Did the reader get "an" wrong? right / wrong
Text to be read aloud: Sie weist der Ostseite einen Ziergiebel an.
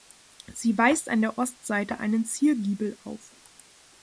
wrong